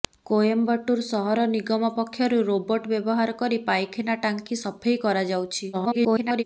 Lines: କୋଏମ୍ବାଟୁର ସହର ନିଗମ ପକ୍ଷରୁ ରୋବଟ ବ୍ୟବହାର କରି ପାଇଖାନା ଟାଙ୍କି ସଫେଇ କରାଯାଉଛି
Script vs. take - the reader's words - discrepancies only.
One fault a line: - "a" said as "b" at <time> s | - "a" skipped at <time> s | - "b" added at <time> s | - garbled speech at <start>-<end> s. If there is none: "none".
- garbled speech at 5.7-6.4 s